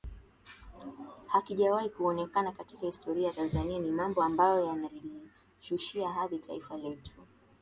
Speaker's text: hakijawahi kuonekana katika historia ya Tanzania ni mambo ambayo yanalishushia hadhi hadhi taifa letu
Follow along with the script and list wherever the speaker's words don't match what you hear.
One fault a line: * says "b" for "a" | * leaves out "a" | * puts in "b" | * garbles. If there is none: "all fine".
* leaves out "hadhi"